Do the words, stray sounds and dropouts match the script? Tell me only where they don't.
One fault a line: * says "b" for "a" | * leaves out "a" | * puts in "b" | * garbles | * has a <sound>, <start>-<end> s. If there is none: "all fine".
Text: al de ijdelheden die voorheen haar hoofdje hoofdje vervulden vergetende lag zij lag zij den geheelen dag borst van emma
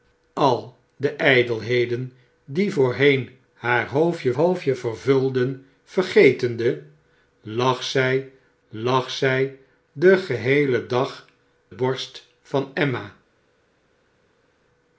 all fine